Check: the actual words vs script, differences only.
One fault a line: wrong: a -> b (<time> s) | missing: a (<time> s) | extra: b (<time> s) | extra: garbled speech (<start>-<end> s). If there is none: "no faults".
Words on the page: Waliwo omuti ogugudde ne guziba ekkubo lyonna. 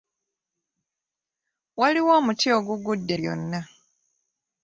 missing: ne guziba ekkubo (3.1 s)